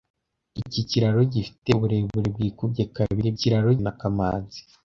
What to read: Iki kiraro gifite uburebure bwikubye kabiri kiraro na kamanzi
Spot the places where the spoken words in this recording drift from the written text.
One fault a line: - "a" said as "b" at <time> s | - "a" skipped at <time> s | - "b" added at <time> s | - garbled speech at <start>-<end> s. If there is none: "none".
none